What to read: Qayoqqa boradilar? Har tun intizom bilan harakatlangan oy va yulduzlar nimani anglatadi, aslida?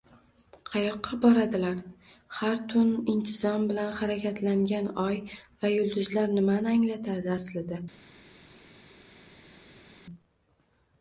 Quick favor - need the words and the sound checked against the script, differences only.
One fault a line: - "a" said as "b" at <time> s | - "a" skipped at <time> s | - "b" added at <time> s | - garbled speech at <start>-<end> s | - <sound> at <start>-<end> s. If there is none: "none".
none